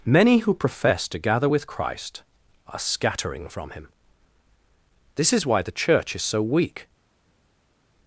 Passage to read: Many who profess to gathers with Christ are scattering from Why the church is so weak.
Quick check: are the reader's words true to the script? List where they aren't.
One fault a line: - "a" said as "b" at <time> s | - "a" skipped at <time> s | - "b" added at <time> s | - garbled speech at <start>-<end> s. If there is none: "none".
- "gathers" said as "gather" at 1.2 s
- "Him This is" added at 3.7 s